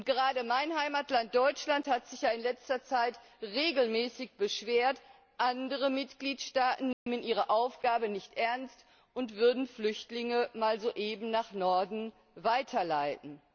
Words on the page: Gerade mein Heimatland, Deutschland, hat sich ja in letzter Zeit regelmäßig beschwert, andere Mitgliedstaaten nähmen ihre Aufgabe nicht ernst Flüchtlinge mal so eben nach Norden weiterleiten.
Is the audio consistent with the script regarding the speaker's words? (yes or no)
no